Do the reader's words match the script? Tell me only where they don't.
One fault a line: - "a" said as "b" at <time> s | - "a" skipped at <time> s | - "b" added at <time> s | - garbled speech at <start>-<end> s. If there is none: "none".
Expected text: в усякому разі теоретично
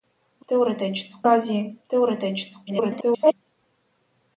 - "усякому" said as "теоретично" at 0.5 s
- garbled speech at 2.7-3.3 s